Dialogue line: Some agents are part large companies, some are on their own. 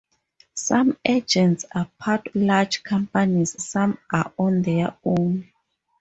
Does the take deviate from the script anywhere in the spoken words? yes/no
no